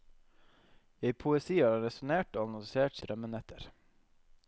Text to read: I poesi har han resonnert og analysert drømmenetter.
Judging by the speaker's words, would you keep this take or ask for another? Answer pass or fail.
pass